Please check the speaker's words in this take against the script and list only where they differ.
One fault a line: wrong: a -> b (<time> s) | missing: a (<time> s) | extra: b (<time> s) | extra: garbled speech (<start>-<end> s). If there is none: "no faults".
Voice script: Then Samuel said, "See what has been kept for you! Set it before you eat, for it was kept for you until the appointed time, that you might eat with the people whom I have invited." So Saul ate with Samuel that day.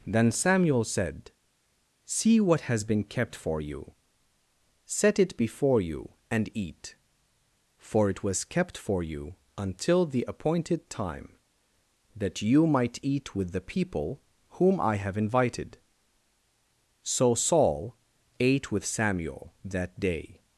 extra: and (6.3 s)